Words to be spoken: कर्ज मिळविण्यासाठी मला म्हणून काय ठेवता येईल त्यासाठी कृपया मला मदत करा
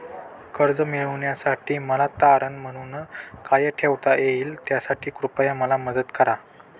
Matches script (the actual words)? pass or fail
fail